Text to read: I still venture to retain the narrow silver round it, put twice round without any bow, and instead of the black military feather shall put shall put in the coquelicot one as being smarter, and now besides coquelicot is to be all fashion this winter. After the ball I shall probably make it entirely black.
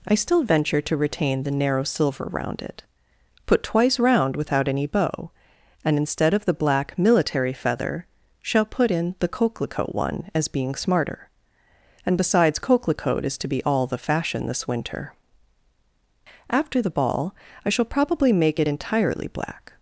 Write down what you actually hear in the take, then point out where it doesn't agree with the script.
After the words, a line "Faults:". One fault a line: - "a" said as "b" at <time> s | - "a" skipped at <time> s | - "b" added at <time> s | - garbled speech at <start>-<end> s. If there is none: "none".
I still venture to retain the narrow silver round it, put twice round without any bow, and instead of the black military feather shall put in the coquelicot one as being smarter, and besides coquelicot is to be all the fashion this winter. After the ball I shall probably make it entirely black.
Faults:
- "shall put" skipped at 8.9 s
- "now" skipped at 12.2 s
- "the" added at 13.8 s